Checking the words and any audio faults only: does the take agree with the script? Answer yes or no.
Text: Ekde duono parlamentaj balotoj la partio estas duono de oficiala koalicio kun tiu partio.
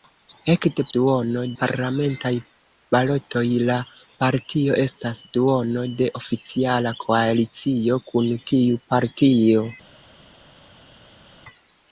yes